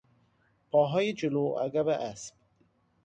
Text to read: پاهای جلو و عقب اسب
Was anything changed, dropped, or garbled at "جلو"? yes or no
no